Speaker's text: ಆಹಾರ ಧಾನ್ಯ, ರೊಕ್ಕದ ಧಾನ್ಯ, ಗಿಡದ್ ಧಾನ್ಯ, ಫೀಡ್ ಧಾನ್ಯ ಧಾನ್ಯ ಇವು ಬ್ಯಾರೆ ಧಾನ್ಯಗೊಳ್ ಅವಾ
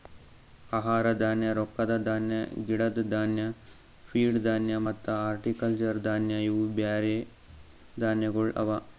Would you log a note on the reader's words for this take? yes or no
yes